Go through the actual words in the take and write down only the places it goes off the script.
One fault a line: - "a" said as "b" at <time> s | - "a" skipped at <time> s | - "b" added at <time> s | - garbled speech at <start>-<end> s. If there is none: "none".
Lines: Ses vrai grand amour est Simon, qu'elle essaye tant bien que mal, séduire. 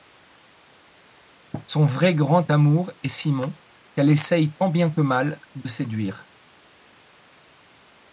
- "Ses" said as "Son" at 1.7 s
- "de" added at 5.6 s